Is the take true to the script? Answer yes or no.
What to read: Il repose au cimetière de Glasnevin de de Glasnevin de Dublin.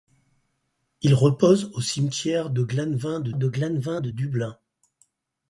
yes